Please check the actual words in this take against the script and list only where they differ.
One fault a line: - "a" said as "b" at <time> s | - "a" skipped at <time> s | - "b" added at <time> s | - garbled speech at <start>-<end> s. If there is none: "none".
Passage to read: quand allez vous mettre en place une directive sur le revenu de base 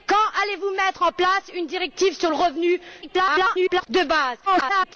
- garbled speech at 3.0-3.9 s
- garbled speech at 4.5-5.0 s